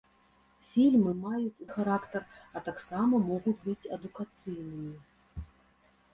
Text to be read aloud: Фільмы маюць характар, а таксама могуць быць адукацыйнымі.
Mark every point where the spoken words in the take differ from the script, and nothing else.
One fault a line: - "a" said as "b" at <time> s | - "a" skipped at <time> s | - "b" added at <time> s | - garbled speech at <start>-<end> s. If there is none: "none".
none